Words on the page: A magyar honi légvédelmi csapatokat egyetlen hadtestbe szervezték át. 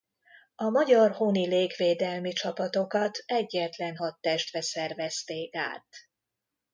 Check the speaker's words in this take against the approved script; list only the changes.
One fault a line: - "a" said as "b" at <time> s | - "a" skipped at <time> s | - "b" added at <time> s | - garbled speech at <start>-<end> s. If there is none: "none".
none